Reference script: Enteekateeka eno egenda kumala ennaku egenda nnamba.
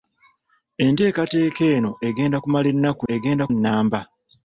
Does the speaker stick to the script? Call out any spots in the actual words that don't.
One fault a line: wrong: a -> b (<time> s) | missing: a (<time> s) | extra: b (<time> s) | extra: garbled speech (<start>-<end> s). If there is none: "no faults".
no faults